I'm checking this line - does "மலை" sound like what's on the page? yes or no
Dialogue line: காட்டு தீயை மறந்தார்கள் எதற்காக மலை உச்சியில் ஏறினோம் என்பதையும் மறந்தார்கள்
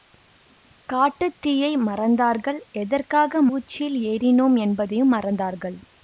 no